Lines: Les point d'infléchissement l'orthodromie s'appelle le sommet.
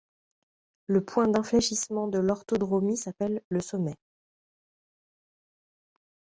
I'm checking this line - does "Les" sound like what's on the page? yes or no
no